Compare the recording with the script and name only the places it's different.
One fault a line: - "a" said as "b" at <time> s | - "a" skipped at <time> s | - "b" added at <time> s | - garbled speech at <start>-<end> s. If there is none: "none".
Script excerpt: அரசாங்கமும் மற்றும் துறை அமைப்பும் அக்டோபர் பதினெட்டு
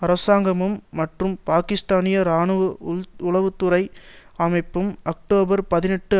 - "பாக்கிஸ்தானிய இராணுவ உளவு" added at 1.5 s